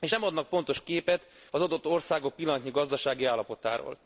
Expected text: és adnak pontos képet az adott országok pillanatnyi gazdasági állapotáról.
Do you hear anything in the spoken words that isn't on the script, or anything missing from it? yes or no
yes